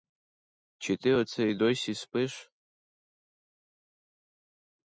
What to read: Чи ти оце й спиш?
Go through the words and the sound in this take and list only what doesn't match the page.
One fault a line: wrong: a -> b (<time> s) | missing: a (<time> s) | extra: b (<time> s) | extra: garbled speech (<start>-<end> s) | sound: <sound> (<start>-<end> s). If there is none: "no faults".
extra: досі (1.5 s)